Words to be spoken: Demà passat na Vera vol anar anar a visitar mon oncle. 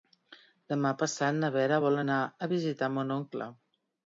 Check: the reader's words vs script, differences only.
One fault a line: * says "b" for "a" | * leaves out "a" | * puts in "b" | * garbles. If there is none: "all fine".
* leaves out "anar"